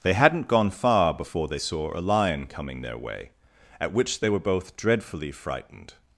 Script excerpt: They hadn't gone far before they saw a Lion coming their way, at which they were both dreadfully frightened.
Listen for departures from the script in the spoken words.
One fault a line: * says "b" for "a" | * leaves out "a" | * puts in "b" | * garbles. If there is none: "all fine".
all fine